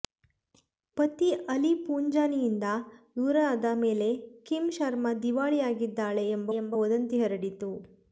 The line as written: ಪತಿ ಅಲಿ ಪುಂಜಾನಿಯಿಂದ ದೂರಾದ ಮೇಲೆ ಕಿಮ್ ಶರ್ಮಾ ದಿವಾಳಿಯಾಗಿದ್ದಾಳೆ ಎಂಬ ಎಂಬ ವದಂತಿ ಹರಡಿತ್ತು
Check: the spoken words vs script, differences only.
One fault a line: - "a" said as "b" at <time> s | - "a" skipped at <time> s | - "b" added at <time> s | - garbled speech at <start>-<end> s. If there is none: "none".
none